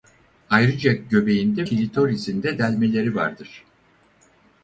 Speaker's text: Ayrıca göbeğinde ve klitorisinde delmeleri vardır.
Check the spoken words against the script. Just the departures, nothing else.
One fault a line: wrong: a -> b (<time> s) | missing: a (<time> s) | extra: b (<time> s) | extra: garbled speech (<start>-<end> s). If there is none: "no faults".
missing: ve (1.7 s)